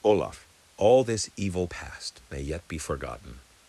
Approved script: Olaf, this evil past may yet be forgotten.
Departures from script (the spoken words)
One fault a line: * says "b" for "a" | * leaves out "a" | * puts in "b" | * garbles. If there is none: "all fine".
* puts in "all"